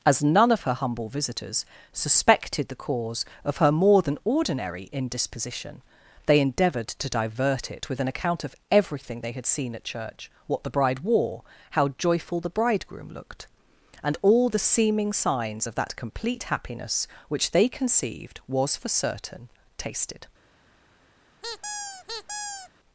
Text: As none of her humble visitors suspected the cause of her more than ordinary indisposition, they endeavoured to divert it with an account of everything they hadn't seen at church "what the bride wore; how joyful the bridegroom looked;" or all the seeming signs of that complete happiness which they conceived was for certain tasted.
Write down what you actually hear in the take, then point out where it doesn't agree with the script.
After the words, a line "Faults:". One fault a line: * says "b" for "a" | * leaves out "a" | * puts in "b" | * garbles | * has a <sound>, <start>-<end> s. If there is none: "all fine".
As none of her humble visitors suspected the cause of her more than ordinary indisposition, they endeavoured to divert it with an account of everything they had seen at church "what the bride wore; how joyful the bridegroom looked;" and all the seeming signs of that complete happiness which they conceived was for certain tasted.
Faults:
* says "had" for "hadn't"
* says "and" for "or"
* has a squeak, 21.4-22.7 s